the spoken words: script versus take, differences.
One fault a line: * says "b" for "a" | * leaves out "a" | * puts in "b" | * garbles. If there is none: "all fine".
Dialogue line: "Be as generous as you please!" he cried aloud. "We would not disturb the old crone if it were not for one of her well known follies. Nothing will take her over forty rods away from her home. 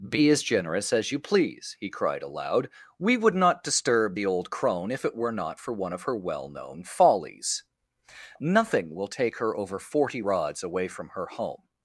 all fine